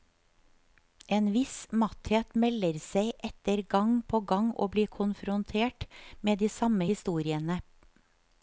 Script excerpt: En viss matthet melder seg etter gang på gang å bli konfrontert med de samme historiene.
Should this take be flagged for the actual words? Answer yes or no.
no